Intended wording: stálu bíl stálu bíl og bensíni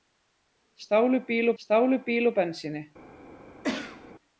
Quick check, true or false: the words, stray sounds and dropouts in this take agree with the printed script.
false